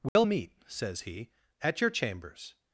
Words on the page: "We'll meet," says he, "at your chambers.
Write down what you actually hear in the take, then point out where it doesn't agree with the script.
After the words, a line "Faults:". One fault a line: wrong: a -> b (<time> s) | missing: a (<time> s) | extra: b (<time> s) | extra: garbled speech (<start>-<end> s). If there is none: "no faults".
"We'll meet," says he, "at your chambers.
Faults:
no faults